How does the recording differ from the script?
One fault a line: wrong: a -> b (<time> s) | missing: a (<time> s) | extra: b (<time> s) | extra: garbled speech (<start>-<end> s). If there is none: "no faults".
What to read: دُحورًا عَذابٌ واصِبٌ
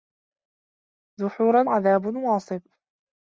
no faults